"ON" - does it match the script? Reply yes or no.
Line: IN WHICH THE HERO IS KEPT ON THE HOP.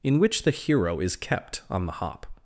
yes